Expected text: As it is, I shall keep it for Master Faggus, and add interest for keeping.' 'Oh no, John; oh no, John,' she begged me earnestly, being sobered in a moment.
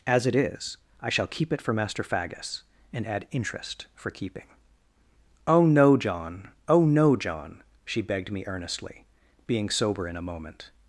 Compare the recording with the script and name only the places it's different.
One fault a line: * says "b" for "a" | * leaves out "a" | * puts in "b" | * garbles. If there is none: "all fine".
* says "sober" for "sobered"